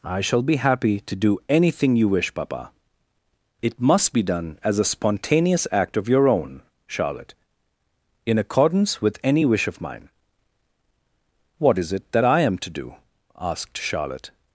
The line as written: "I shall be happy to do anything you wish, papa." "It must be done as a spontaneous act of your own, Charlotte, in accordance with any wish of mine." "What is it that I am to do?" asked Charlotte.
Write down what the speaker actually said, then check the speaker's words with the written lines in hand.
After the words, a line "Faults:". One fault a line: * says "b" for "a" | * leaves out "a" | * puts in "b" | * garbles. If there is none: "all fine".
"I shall be happy to do anything you wish, papa." "It must be done as a spontaneous act of your own, Charlotte, in accordance with any wish of mine." "What is it that I am to do?" asked Charlotte.
Faults:
all fine